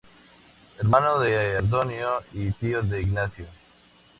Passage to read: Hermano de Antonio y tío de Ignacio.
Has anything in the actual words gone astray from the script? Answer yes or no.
no